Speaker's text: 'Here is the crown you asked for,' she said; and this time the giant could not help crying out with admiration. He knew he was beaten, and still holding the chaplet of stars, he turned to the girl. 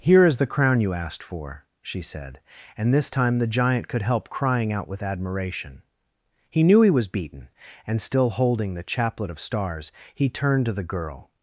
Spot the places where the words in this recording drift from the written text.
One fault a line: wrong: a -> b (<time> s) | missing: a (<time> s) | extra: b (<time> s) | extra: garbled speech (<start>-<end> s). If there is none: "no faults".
missing: not (4.0 s)